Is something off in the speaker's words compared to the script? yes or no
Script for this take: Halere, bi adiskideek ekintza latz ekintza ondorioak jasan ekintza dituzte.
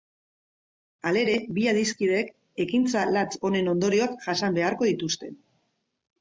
yes